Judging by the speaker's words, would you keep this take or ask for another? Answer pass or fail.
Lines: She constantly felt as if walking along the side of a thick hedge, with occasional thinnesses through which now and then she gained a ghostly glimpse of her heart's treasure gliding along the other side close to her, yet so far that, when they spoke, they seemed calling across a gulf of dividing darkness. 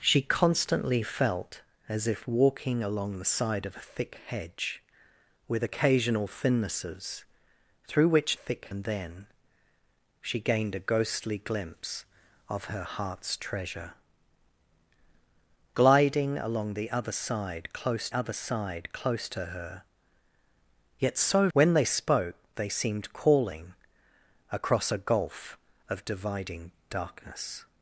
fail